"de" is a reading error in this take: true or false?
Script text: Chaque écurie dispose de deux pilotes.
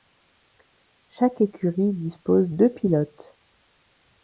true